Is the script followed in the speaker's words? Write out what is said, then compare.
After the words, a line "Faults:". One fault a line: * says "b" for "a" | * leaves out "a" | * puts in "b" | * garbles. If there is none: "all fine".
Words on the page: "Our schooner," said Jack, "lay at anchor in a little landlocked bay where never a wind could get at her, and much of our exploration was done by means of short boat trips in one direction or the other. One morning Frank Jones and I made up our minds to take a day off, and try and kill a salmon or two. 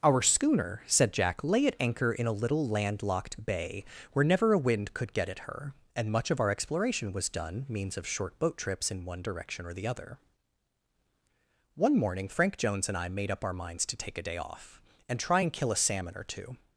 "Our schooner," said Jack, "lay at anchor in a little landlocked bay where never a wind could get at her, and much of our exploration was done means of short boat trips in one direction or the other. One morning Frank Jones and I made up our minds to take a day off, and try and kill a salmon or two.
Faults:
* leaves out "by"